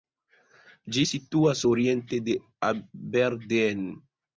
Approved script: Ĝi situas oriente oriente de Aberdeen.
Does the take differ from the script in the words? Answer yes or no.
yes